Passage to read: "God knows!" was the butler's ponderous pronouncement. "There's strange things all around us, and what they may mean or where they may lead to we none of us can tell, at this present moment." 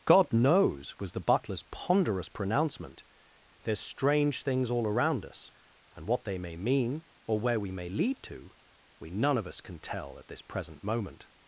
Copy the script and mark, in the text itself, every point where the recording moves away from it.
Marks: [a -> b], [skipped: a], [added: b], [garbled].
"God knows!" was the butler's ponderous pronouncement. "There's strange things all around us, and what they may mean or where [they -> we] may lead to we none of us can tell, at this present moment."